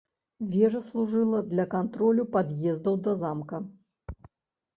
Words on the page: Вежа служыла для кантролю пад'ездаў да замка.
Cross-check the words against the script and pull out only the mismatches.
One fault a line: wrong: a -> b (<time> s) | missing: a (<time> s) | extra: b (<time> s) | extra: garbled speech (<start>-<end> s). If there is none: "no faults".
no faults